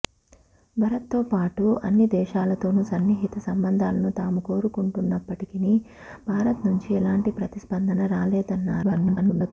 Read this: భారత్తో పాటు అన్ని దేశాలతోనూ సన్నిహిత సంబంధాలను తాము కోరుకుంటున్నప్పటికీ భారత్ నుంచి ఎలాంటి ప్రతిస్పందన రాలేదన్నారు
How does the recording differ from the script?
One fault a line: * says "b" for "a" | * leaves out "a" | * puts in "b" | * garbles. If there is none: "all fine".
* garbles